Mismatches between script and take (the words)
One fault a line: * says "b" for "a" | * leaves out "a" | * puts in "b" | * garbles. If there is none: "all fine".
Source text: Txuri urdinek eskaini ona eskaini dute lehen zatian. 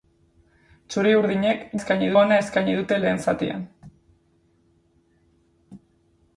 all fine